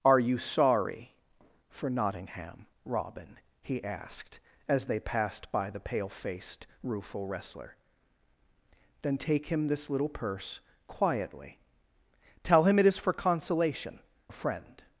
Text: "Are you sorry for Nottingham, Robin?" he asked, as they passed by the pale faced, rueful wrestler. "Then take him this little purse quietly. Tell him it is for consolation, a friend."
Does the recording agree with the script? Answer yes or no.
yes